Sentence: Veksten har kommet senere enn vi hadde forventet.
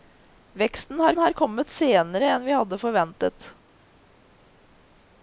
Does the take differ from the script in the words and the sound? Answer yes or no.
yes